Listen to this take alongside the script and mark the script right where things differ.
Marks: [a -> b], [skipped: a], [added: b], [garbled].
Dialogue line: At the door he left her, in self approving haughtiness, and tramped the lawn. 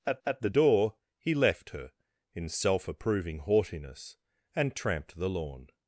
At [added: at] the door he left her, in self approving haughtiness, and tramped the lawn.